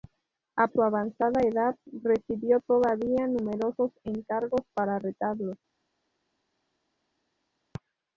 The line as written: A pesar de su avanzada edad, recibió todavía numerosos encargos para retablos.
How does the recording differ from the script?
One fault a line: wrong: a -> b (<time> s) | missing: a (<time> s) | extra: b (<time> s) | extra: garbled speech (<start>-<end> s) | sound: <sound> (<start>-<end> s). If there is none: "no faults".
missing: pesar de (0.7 s)